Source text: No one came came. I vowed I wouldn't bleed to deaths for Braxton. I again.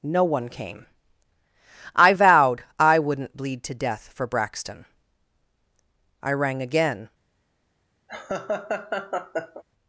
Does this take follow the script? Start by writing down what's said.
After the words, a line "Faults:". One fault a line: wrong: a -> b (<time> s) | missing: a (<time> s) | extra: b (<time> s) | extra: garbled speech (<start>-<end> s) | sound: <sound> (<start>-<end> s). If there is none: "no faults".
No one came. I vowed I wouldn't bleed to death for Braxton. I rang again.
Faults:
missing: came (0.9 s)
wrong: deaths -> death (3.7 s)
extra: rang (6.3 s)
sound: laugh (8.1-9.6 s)